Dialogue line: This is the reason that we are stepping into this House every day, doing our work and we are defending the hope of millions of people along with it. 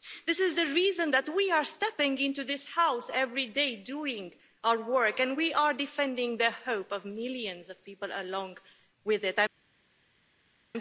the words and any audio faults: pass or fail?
pass